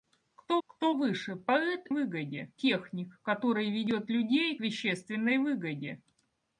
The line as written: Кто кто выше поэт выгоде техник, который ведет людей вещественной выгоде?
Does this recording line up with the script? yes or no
yes